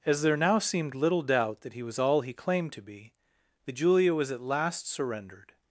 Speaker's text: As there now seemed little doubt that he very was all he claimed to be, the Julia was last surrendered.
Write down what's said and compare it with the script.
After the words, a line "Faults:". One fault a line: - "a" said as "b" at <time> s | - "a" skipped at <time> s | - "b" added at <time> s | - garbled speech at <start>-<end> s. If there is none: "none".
As there now seemed little doubt that he was all he claimed to be, the Julia was at last surrendered.
Faults:
- "very" skipped at 1.8 s
- "at" added at 4.3 s